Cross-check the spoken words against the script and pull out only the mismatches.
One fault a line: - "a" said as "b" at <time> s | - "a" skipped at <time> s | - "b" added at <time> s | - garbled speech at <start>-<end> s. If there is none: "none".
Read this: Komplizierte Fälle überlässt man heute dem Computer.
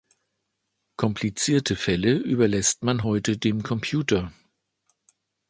none